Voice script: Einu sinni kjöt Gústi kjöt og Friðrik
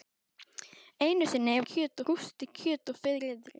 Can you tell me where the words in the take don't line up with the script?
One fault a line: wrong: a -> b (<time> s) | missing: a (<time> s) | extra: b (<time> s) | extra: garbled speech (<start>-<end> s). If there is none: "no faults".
no faults